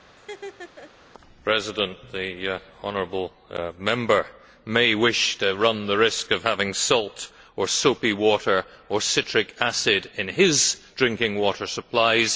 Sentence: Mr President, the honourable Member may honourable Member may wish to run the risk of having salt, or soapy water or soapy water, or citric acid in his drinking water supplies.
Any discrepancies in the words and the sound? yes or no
yes